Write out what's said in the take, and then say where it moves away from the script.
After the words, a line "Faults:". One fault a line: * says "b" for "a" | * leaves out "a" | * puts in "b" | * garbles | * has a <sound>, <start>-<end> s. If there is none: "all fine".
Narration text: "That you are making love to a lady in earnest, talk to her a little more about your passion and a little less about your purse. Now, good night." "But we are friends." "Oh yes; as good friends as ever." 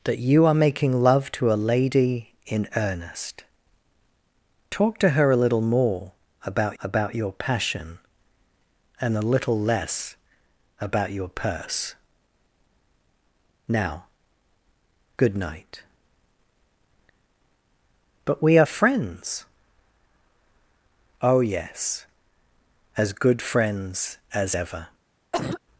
"That you are making love to a lady in earnest, talk to her a little more about about your passion and a little less about your purse. Now, good night." "But we are friends." "Oh yes; as good friends as ever."
Faults:
* puts in "about"
* has a cough, 25.3-25.6 s